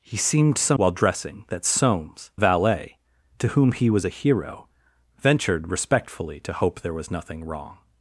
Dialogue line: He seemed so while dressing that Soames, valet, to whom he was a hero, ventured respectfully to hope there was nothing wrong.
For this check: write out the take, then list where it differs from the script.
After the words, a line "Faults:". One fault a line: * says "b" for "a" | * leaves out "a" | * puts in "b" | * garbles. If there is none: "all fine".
He seemed so while dressing that Soames, valet, to whom he was a hero, ventured respectfully to hope there was nothing wrong.
Faults:
all fine